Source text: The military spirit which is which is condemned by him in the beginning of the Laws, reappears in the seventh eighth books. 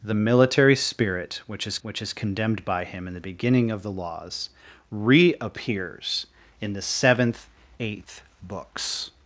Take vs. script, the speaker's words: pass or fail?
pass